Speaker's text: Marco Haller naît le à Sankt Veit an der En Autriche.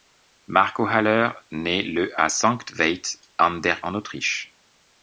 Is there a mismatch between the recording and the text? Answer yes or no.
no